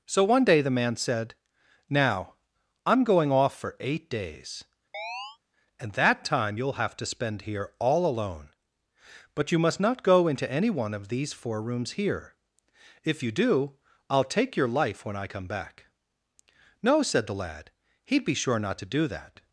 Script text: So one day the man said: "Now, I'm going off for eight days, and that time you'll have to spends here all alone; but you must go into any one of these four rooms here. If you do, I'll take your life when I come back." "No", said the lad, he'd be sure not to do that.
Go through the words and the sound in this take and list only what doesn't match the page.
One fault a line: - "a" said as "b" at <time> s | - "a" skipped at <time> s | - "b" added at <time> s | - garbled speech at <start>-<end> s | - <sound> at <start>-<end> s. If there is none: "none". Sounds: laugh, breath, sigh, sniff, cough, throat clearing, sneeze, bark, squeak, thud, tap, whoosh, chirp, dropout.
- chirp at 4.9-5.4 s
- "spends" said as "spend" at 7.0 s
- "not" added at 9.8 s